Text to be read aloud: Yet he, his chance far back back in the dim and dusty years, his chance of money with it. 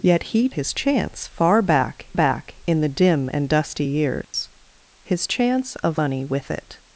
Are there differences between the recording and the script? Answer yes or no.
no